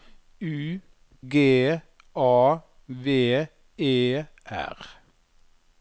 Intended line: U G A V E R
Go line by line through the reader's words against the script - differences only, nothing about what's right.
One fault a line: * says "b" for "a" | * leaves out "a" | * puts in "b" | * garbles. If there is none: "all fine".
all fine